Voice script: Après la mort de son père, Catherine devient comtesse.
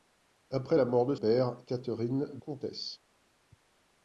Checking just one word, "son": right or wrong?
wrong